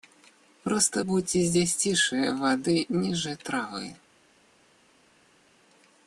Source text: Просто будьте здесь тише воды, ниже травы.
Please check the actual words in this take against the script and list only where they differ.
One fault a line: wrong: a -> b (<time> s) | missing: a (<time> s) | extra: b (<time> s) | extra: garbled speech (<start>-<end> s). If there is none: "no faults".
no faults